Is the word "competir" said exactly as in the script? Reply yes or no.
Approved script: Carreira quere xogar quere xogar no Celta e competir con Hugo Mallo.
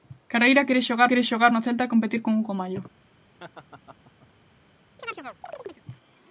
yes